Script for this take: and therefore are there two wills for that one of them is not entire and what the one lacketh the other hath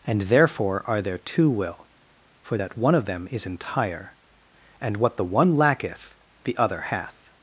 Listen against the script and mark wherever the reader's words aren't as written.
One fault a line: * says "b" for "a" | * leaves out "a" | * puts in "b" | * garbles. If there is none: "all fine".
* says "will" for "wills"
* leaves out "not"